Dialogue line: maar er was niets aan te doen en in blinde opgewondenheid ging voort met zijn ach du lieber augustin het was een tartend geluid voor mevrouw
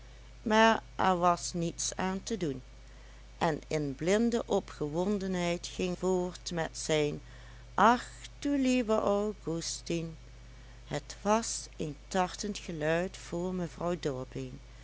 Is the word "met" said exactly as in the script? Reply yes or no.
yes